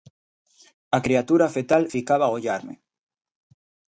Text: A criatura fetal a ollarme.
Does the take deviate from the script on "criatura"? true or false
false